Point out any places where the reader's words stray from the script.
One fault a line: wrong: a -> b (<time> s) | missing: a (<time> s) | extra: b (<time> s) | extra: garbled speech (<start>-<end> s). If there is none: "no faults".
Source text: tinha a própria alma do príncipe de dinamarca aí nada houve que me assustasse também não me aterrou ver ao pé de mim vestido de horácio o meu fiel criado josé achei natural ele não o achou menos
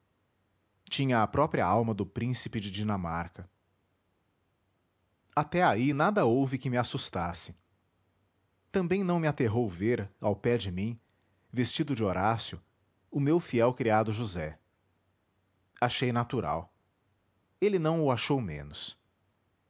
extra: até (5.3 s)